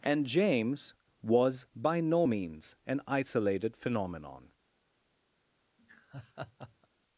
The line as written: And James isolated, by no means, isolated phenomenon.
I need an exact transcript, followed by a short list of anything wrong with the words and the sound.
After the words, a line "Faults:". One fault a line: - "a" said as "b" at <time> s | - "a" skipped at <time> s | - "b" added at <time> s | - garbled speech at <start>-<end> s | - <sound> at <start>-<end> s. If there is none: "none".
And James was, by no means, an isolated phenomenon.
Faults:
- "isolated" said as "was" at 1.2 s
- "an" added at 2.8 s
- laugh at 5.8-6.9 s